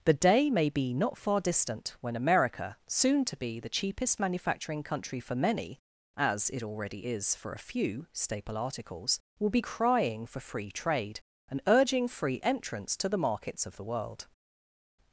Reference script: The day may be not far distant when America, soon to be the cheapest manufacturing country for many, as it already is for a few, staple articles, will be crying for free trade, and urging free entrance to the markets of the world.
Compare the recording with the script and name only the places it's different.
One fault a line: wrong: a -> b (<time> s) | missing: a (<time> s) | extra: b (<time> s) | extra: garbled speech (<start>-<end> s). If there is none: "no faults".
no faults